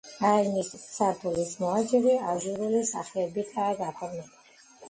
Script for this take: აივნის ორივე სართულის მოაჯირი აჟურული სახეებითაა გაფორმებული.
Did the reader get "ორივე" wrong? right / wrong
wrong